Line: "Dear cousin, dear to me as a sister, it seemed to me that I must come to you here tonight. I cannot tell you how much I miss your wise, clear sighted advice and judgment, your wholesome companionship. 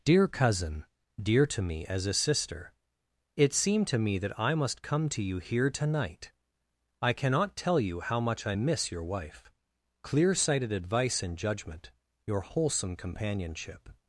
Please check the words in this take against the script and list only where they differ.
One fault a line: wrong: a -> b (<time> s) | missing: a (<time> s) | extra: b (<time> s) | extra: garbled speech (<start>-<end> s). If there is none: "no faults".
wrong: wise -> wife (9.0 s)